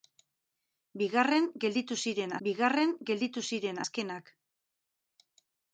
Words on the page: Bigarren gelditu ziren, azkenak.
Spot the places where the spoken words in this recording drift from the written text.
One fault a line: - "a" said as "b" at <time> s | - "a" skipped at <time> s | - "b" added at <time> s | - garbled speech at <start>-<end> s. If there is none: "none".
- "bigarren gelditu ziren" added at 2.5 s